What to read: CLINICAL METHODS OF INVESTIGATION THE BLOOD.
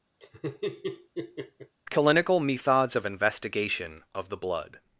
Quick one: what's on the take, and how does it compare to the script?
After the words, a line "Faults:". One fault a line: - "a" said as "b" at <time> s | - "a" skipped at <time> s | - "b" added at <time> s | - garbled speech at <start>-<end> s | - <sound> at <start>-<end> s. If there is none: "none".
CLINICAL METHODS OF INVESTIGATION OF THE BLOOD.
Faults:
- laugh at 0.2-1.8 s
- "OF" added at 4.1 s